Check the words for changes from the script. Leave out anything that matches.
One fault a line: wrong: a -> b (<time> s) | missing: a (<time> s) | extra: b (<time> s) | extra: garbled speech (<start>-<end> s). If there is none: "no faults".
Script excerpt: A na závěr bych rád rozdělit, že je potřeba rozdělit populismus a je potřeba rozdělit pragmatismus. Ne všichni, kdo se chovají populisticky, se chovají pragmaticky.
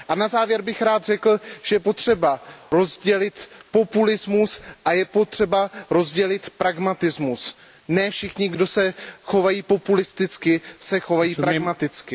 wrong: rozdělit -> řekl (1.0 s)